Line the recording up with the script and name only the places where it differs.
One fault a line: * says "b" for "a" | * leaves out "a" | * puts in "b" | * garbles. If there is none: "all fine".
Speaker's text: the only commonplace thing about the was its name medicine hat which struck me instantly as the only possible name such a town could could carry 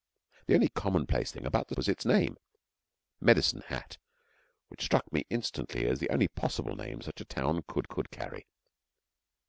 all fine